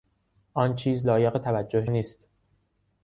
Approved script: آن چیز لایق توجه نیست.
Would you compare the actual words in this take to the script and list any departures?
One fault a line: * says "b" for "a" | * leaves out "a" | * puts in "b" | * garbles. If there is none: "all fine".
all fine